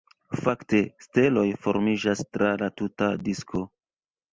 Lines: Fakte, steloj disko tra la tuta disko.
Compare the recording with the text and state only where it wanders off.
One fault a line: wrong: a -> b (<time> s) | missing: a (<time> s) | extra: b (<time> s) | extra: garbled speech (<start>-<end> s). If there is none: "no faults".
wrong: disko -> formiĝas (1.7 s)